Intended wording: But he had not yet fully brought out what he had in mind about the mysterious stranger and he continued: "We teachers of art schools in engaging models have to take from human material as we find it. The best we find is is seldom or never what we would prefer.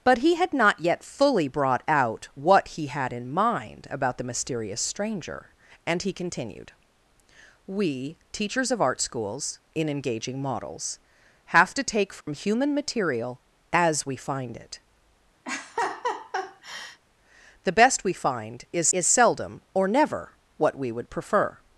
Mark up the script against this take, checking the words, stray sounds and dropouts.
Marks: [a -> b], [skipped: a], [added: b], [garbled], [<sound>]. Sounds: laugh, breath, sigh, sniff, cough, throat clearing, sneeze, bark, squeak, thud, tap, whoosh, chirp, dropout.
But he had not yet fully brought out what he had in mind about the mysterious stranger and he continued: "We teachers of art schools in engaging models have to take from [dropout] human material as we find it. [laugh] The best we find is is seldom or never what we would prefer.